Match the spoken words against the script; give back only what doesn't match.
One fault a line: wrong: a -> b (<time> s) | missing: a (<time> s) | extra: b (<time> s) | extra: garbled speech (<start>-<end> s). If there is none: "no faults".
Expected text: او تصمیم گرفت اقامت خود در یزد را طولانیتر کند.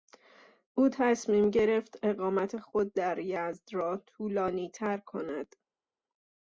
no faults